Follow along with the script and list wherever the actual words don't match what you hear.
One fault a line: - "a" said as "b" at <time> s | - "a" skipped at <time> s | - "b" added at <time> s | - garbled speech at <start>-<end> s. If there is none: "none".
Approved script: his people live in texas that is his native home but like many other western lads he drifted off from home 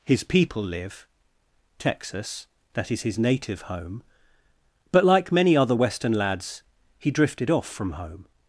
- "in" skipped at 1.1 s